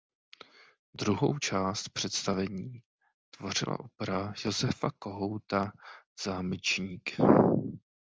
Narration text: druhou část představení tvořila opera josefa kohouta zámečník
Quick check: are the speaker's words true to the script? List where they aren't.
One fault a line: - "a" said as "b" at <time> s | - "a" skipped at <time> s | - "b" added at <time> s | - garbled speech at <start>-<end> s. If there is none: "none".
none